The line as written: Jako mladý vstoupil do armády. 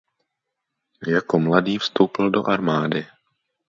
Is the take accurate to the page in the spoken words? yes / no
yes